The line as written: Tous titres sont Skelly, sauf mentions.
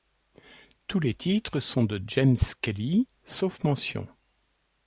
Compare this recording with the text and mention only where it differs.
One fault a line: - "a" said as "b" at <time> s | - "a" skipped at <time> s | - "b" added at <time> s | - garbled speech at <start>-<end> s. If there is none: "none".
- "les" added at 1.0 s
- "de James" added at 1.8 s